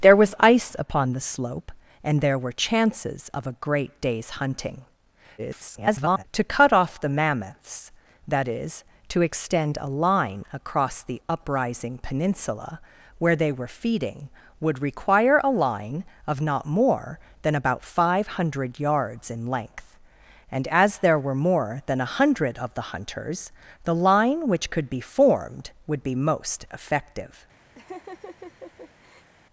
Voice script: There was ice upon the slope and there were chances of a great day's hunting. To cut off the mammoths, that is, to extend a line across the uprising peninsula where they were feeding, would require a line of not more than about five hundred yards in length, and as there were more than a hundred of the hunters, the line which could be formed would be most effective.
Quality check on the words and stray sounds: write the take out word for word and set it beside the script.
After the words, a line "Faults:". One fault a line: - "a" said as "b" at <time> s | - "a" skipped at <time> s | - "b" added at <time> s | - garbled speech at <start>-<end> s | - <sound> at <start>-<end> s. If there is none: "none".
There was ice upon the slope and there were chances of a great day's hunting. [garbled] To cut off the mammoths, that is, to extend a line across the uprising peninsula where they were feeding, would require a line of not more than about five hundred yards in length, and as there were more than a hundred of the hunters, the line which could be formed would be most effective.
Faults:
- garbled speech at 5.4-6.2 s
- laugh at 27.7-29.3 s